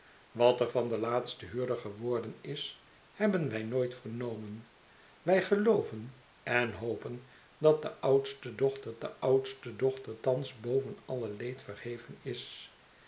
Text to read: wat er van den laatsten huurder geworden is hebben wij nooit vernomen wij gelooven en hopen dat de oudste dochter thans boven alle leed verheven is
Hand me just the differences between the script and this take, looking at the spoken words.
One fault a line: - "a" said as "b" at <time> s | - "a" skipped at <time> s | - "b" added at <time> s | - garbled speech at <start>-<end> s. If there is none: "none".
- "de oudste dochter" added at 9.0 s